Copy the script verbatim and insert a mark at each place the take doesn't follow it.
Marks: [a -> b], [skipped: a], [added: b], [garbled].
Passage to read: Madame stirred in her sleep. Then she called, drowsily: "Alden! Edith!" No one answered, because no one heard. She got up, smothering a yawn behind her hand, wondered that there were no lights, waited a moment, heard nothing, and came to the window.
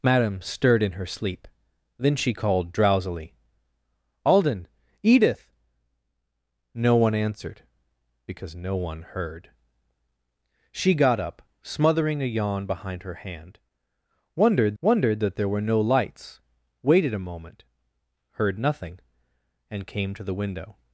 Madame stirred in her sleep. Then she called, drowsily: "Alden! Edith!" No one answered, because no one heard. She got up, smothering a yawn behind her hand, wondered [added: wondered] that there were no lights, waited a moment, heard nothing, and came to the window.